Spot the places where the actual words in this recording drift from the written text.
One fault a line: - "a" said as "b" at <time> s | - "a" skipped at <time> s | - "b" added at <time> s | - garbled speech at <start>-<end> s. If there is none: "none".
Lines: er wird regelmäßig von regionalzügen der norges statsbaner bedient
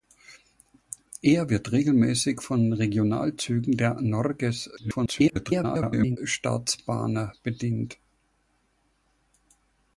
- garbled speech at 4.8-6.2 s